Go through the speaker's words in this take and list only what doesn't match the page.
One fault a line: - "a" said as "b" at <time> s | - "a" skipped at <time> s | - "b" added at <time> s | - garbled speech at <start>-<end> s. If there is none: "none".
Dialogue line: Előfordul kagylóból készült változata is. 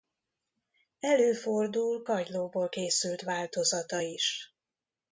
none